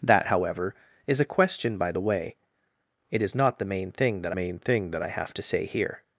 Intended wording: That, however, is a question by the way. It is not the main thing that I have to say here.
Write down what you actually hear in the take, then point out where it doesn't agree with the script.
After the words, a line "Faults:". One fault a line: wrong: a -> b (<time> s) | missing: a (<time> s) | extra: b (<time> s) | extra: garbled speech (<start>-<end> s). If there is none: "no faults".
That, however, is a question by the way. It is not the main thing that main thing that I have to say here.
Faults:
extra: main thing that (4.3 s)